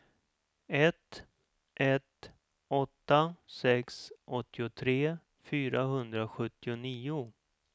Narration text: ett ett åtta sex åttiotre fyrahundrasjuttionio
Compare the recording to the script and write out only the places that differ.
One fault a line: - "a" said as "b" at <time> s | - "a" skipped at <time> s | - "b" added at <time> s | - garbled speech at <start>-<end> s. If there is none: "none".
none